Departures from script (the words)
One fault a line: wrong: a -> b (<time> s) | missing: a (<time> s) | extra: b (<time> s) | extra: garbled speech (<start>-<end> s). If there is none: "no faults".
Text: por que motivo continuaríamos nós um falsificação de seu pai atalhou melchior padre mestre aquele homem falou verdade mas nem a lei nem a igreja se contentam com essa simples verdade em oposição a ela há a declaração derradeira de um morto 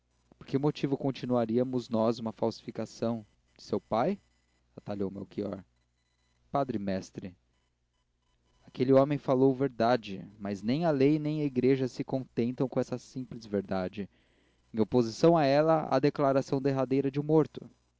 wrong: um -> uma (2.2 s)